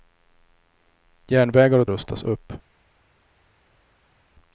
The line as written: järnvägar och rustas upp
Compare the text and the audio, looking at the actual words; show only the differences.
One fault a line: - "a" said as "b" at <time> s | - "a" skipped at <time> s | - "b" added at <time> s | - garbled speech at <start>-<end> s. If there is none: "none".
none